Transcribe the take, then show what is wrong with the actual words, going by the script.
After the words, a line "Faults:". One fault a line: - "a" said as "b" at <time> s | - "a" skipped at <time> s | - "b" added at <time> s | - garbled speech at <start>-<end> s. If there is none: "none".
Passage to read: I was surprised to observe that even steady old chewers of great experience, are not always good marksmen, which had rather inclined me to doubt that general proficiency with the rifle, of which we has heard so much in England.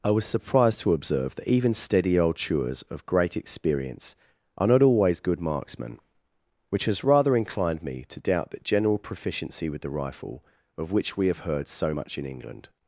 I was surprised to observe that even steady old chewers of great experience, are not always good marksmen, which has rather inclined me to doubt that general proficiency with the rifle, of which we have heard so much in England.
Faults:
- "had" said as "has" at 6.8 s
- "has" said as "have" at 11.3 s